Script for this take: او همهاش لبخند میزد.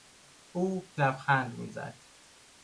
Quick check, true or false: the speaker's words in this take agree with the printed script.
false